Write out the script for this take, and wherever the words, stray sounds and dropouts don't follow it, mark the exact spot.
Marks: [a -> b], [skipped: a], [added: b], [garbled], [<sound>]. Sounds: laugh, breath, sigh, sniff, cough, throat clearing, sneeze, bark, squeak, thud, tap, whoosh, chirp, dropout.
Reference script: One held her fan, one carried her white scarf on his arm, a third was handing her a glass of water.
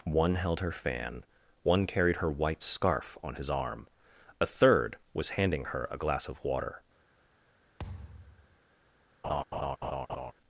One held her fan, one carried her white scarf on his arm, a third was handing her a glass of water. [thud] [laugh]